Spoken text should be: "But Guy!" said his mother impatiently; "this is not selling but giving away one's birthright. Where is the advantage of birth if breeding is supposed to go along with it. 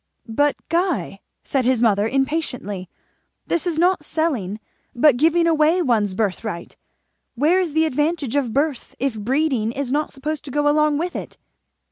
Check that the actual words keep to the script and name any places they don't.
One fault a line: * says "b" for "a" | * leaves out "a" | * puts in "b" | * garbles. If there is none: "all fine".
* puts in "not"